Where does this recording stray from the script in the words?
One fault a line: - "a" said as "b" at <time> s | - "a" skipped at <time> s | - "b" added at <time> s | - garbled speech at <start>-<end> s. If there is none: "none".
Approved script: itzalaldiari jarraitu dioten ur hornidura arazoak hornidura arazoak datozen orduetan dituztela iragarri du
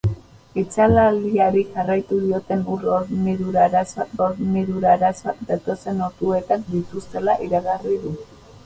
none